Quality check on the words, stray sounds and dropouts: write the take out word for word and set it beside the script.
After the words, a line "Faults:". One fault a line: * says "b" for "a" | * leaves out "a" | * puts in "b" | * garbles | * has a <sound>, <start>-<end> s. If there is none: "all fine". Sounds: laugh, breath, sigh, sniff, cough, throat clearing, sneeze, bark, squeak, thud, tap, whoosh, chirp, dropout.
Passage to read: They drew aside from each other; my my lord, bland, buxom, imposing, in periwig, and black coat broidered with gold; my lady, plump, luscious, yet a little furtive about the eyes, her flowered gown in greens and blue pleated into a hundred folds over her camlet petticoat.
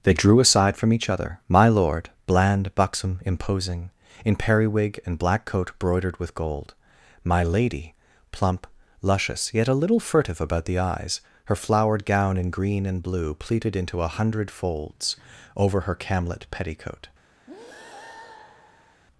They drew aside from each other; my lord, bland, buxom, imposing, in periwig, and black coat broidered with gold; my lady, plump, luscious, yet a little furtive about the eyes, her flowered gown in green and blue pleated into a hundred folds over her camlet petticoat.
Faults:
* leaves out "my"
* says "green" for "greens"
* has a breath, 17.5-19.0 s